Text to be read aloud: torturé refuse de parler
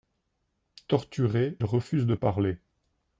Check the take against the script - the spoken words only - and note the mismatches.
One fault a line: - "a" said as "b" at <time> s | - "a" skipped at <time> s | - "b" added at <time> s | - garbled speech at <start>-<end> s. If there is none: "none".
none